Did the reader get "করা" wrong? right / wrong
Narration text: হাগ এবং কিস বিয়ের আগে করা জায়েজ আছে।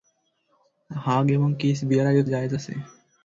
wrong